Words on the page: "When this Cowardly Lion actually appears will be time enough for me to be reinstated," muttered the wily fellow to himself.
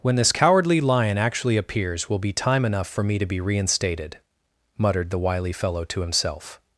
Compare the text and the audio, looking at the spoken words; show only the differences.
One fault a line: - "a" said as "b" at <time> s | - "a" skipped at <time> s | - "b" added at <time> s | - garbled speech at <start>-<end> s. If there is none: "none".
none